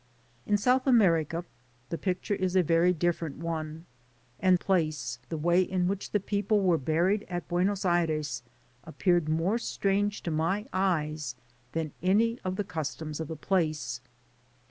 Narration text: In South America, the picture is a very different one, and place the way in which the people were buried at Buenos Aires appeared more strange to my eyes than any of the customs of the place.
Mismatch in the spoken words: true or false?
false